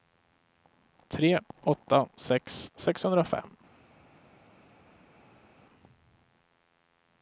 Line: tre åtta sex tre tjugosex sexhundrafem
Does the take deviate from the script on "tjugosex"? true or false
true